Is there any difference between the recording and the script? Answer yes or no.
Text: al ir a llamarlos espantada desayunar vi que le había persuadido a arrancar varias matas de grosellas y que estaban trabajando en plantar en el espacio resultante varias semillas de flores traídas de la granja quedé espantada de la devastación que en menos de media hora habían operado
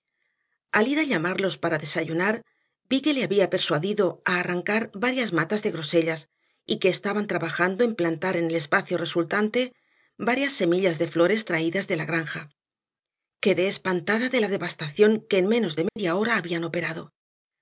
yes